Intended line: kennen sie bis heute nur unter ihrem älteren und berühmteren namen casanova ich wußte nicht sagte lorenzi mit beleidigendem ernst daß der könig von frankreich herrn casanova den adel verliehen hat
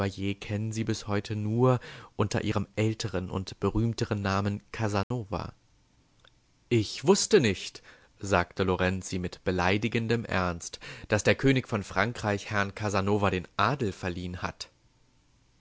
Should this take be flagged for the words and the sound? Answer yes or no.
yes